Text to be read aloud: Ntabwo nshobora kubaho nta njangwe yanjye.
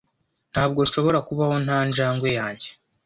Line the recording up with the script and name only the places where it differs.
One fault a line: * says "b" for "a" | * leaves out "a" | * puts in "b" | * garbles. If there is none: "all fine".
all fine